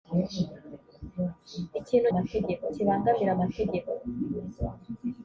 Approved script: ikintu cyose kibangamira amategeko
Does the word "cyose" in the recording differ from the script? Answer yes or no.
yes